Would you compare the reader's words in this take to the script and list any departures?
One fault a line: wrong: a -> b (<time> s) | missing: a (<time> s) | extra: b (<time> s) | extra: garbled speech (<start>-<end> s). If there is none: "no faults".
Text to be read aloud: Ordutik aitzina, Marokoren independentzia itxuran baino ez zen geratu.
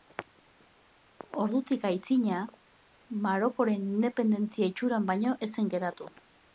no faults